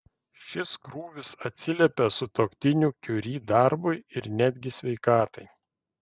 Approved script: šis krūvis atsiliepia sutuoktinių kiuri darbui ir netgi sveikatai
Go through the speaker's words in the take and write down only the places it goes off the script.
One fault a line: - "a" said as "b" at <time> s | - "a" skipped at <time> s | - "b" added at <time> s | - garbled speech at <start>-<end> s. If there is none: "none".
none